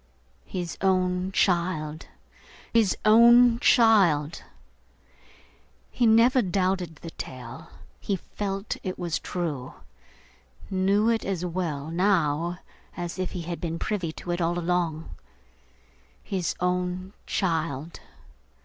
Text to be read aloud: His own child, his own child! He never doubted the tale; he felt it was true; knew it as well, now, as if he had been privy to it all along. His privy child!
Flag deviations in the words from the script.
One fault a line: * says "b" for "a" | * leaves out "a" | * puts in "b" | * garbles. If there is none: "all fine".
* says "own" for "privy"